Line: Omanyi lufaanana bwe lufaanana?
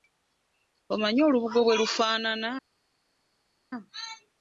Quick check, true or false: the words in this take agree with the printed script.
false